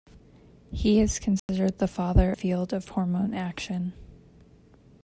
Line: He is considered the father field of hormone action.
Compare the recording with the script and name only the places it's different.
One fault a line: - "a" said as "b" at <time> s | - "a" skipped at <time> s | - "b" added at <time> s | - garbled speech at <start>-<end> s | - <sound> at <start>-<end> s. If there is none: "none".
- dropout at 1.4-1.5 s